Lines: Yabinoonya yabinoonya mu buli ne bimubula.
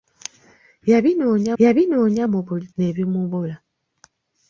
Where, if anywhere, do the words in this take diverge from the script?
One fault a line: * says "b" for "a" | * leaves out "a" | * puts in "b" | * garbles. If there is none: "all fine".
all fine